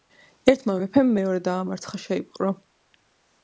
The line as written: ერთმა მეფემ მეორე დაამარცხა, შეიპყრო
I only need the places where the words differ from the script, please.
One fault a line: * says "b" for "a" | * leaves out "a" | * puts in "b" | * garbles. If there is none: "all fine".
all fine